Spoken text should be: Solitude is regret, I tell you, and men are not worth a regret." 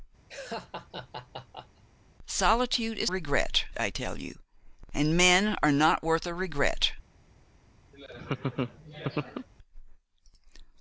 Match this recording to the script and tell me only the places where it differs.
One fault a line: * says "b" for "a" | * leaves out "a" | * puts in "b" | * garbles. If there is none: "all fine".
all fine